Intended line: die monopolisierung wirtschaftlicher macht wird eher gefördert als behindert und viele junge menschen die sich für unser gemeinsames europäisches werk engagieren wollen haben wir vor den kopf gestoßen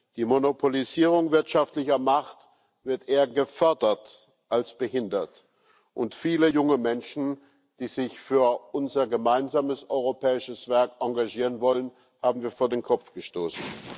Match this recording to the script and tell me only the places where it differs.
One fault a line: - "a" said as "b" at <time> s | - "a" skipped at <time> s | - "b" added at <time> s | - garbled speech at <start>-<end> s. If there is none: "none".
none